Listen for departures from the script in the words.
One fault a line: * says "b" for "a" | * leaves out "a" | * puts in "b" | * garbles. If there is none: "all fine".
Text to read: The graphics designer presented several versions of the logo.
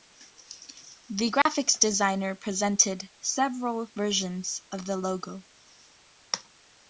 all fine